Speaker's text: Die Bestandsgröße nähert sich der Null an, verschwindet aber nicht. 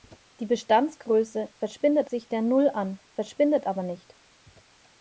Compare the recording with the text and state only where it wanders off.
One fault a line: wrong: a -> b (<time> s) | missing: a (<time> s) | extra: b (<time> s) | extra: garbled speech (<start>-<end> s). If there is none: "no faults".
wrong: nähert -> verschwindet (1.6 s)